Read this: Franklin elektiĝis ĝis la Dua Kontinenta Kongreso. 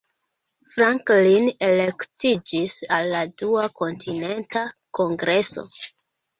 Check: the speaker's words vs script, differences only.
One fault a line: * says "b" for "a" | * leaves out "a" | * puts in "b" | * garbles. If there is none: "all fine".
* says "al" for "ĝis"